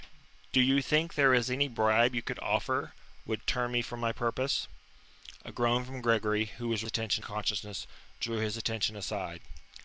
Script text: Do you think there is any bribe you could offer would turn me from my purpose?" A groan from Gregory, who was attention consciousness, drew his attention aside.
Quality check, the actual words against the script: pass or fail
pass